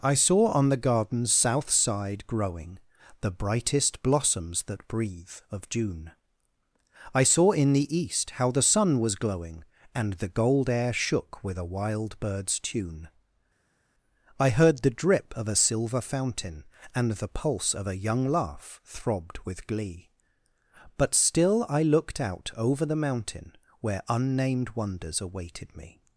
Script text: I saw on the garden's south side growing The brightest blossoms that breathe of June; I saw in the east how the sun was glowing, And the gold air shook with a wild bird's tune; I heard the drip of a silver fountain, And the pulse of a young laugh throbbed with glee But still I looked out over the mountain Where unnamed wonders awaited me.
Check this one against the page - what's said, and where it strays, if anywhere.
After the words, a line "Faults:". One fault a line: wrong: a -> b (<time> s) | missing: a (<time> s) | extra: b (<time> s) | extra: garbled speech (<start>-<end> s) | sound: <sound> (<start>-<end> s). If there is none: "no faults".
I saw on the garden's south side growing The brightest blossoms that breathe of June; I saw in the east how the sun was glowing, And the gold air shook with a wild bird's tune; I heard the drip of a silver fountain, And the pulse of a young laugh throbbed with glee But still I looked out over the mountain Where unnamed wonders awaited me.
Faults:
no faults